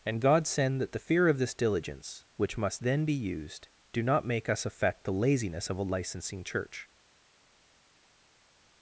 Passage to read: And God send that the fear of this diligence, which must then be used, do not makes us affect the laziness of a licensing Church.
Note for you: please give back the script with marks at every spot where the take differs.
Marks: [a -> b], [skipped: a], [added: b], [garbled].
And God send that the fear of this diligence, which must then be used, do not [makes -> make] us affect the laziness of a licensing Church.